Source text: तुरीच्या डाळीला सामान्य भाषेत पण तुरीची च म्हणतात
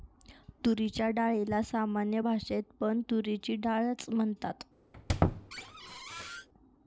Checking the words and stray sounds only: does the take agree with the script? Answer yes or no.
no